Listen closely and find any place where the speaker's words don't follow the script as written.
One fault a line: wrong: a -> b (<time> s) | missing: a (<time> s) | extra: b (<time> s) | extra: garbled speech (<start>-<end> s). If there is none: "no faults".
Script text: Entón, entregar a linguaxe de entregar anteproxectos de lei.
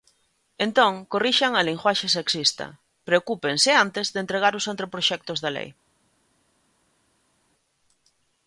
wrong: entregar -> corrixan (1.1 s)
extra: sexista preocúpense antes (2.2 s)
extra: os (4.6 s)